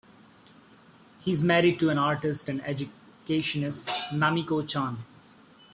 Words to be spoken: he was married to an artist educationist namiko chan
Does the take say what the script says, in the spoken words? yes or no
no